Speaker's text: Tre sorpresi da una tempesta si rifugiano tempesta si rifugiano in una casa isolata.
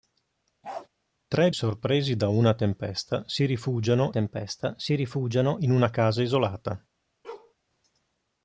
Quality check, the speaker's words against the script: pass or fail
pass